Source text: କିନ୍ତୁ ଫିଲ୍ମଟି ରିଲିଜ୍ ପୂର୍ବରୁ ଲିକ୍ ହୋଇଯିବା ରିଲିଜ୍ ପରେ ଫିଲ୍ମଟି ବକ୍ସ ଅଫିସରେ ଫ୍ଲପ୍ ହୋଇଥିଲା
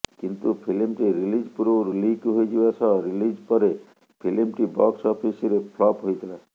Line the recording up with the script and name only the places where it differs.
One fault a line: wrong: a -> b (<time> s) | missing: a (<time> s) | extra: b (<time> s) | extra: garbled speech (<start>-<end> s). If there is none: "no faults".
extra: ସହ (2.8 s)